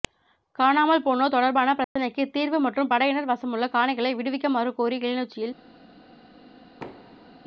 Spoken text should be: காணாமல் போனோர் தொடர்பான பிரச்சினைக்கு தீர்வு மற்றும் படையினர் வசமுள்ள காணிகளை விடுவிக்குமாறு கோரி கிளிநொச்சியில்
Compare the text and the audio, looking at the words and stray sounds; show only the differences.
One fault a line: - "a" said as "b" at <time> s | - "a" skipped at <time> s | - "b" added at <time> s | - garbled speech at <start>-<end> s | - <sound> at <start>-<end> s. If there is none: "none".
- dropout at 1.8-2.0 s
- thud at 6.8-7.4 s